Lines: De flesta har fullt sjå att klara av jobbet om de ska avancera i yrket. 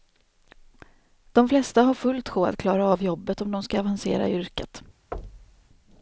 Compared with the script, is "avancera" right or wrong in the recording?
right